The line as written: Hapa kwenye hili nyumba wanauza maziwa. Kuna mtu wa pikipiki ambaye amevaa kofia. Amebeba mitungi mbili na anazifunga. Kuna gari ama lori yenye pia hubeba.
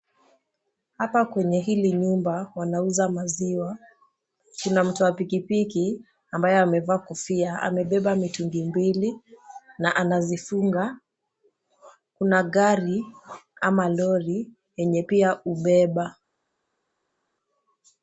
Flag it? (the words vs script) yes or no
no